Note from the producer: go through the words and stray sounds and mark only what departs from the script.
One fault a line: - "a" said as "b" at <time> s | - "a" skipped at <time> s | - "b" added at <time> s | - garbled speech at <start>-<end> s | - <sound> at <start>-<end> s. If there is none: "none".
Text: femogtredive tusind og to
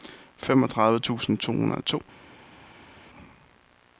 - "to hundrede" added at 1.4 s